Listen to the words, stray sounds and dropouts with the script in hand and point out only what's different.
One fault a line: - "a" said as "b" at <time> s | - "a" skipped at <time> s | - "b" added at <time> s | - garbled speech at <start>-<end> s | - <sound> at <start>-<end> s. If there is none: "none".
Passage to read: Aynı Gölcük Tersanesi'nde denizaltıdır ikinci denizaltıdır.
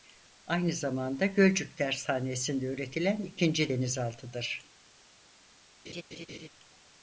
- "zamanda" added at 0.7 s
- "denizaltıdır" said as "üretilen" at 2.6 s
- laugh at 5.8-6.5 s